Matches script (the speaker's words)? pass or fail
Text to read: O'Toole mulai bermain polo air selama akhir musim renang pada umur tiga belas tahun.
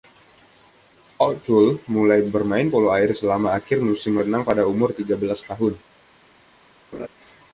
pass